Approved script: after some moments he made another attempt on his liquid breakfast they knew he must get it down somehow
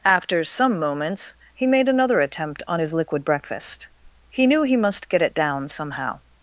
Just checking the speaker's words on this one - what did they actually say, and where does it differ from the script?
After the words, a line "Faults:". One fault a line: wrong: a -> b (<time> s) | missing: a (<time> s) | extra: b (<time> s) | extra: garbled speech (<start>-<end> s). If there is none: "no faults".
after some moments he made another attempt on his liquid breakfast he knew he must get it down somehow
Faults:
wrong: they -> he (4.3 s)